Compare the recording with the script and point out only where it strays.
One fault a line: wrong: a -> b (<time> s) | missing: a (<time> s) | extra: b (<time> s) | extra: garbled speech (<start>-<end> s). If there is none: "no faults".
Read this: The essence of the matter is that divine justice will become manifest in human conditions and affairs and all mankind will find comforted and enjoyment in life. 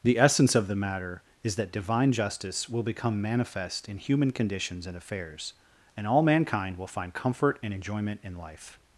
wrong: comforted -> comfort (7.1 s)